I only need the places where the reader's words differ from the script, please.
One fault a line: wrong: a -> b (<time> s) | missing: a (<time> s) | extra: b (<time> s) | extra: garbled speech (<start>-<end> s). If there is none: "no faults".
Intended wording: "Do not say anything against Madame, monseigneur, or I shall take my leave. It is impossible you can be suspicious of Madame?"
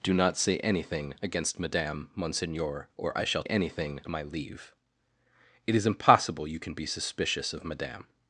wrong: take -> anything (3.4 s)